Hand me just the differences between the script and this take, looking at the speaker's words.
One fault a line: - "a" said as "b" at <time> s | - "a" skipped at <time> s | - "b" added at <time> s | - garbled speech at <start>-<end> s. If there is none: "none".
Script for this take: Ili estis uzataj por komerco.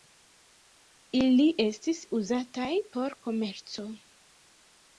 none